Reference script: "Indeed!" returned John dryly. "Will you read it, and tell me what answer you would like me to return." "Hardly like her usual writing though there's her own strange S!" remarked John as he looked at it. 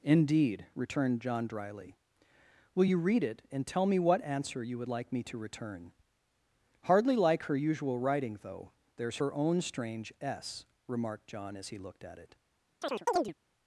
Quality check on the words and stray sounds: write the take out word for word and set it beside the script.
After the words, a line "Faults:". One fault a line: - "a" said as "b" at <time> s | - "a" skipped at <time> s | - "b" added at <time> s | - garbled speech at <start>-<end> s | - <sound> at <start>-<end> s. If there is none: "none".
"Indeed!" returned John dryly. "Will you read it, and tell me what answer you would like me to return." "Hardly like her usual writing though there's her own strange S!" remarked John as he looked at it.
Faults:
- chirp at 12.8-13.3 s